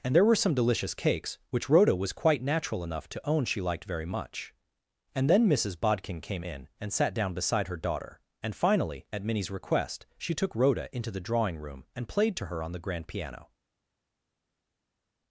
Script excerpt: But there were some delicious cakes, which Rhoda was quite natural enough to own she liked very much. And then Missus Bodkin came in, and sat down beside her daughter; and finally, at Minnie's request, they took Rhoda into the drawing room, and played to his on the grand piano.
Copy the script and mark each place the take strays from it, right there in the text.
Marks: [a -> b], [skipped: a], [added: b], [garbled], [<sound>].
[But -> And] there were some delicious cakes, which Rhoda was quite natural enough to own she liked very much. And then Missus Bodkin came in, and sat down beside her daughter; and finally, at Minnie's request, [they -> she] took Rhoda into the drawing room, and played to [his -> her] on the grand piano.